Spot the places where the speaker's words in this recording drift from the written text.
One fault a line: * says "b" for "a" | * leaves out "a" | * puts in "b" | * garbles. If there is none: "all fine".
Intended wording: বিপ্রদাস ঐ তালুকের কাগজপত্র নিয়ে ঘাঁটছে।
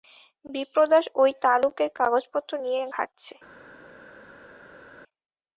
all fine